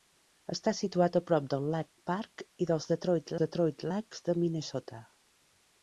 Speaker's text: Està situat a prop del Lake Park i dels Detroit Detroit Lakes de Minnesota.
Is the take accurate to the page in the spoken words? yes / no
yes